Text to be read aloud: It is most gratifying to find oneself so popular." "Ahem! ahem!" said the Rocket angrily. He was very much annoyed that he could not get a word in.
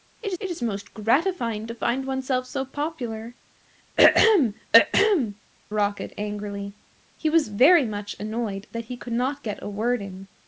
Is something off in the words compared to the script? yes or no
yes